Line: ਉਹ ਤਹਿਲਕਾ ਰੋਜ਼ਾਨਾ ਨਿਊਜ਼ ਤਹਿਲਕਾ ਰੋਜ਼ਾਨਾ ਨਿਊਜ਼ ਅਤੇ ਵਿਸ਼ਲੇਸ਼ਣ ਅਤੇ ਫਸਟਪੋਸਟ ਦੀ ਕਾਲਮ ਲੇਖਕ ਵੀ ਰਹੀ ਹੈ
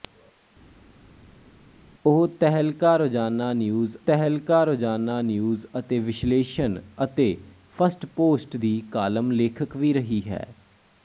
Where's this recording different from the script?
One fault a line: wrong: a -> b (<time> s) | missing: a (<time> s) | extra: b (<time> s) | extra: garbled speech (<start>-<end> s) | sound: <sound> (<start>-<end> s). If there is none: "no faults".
no faults